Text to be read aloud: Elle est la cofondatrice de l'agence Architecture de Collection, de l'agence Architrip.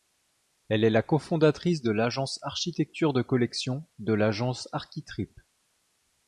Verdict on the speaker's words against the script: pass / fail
pass